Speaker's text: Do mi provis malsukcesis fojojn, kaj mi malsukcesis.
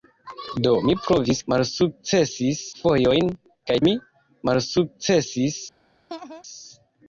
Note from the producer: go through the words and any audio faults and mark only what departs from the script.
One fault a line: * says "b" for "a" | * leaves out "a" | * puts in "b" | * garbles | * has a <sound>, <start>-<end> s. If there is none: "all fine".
* has a laugh, 6.1-6.4 s